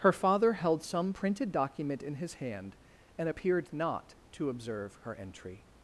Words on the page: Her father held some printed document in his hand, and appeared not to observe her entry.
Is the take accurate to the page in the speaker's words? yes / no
yes